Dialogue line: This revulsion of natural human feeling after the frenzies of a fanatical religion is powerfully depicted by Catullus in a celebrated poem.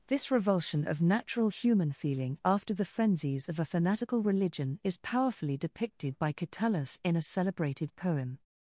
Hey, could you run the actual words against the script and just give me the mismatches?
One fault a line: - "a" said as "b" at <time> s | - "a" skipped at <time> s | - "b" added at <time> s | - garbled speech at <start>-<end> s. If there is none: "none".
none